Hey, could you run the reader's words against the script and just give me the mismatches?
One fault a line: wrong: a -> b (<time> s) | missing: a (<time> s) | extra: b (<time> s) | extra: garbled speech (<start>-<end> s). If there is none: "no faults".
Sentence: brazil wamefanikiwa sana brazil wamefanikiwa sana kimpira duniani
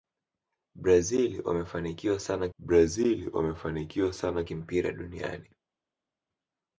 no faults